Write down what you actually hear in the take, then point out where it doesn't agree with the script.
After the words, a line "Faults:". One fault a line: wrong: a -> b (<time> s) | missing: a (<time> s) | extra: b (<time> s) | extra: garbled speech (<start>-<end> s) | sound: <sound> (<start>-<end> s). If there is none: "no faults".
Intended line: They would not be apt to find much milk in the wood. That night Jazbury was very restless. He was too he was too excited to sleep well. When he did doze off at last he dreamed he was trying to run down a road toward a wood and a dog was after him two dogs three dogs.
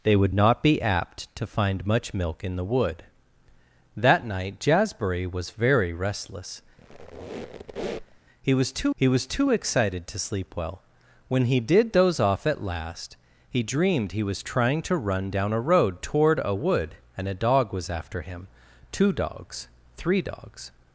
They would not be apt to find much milk in the wood. That night Jazbury was very restless. He was too he was too excited to sleep well. When he did doze off at last he dreamed he was trying to run down a road toward a wood and a dog was after him two dogs three dogs.
Faults:
sound: squeak (6.8-8.2 s)